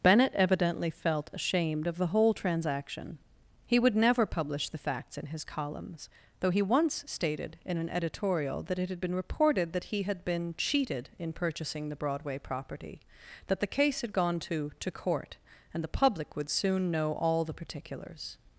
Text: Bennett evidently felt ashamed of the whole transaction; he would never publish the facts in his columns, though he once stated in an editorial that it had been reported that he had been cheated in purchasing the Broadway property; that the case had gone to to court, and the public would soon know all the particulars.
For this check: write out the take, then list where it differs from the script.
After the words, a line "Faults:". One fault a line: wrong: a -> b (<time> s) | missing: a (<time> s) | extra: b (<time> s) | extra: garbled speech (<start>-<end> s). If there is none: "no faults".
Bennett evidently felt ashamed of the whole transaction; he would never publish the facts in his columns, though he once stated in an editorial that it had been reported that he had been cheated in purchasing the Broadway property; that the case had gone to to court, and the public would soon know all the particulars.
Faults:
no faults